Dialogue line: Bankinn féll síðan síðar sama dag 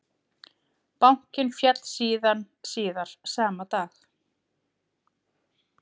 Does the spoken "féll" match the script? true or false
true